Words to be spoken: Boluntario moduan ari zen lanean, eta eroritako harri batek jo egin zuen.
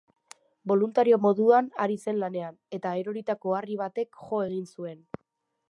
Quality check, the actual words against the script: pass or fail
pass